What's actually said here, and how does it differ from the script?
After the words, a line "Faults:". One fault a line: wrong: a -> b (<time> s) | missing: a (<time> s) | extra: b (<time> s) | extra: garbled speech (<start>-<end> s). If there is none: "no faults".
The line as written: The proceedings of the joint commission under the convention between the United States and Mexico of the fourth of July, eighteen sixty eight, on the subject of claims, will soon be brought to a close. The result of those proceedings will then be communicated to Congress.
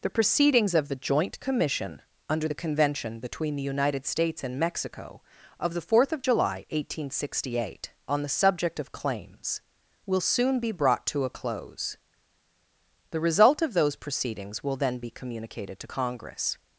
The proceedings of the joint commission under the convention between the United States and Mexico of the fourth of July, eighteen sixty eight, on the subject of claims, will soon be brought to a close. The result of those proceedings will then be communicated to Congress.
Faults:
no faults